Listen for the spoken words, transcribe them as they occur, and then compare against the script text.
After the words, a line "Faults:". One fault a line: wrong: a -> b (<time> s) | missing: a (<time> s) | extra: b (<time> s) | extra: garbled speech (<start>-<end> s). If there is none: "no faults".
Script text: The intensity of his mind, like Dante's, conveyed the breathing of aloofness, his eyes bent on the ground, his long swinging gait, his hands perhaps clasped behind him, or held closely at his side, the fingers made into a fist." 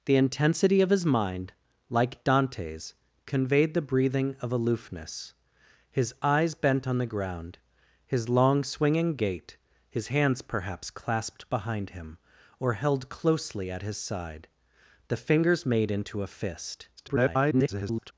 The intensity of his mind, like Dante's, conveyed the breathing of aloofness, his eyes bent on the ground, his long swinging gait, his hands perhaps clasped behind him, or held closely at his side, the fingers made into a fist." [garbled]
Faults:
extra: garbled speech (17.0-18.1 s)